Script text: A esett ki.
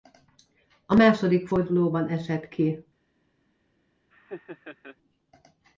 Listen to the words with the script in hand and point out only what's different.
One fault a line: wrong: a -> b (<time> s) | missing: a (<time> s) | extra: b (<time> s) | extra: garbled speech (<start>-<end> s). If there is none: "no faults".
extra: második fordulóban (0.9 s)